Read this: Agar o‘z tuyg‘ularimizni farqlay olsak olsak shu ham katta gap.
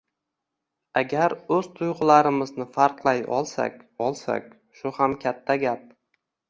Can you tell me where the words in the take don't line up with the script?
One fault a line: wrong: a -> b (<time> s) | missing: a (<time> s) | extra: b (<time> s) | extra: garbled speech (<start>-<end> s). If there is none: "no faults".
no faults